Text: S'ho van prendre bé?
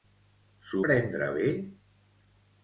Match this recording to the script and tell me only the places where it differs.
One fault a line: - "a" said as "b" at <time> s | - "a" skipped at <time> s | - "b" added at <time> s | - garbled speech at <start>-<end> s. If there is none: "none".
- "van" skipped at 0.8 s